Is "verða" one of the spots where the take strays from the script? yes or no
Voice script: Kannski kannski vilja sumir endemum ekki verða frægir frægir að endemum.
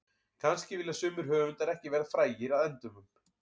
no